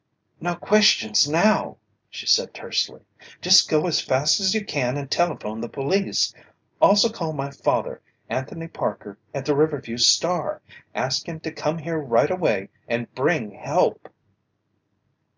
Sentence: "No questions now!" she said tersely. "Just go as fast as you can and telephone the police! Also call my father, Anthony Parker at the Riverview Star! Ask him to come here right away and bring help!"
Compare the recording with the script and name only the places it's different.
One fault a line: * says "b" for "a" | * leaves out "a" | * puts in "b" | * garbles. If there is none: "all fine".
all fine